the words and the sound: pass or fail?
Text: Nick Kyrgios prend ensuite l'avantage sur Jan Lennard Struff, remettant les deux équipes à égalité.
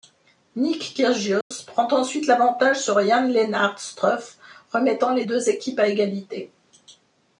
fail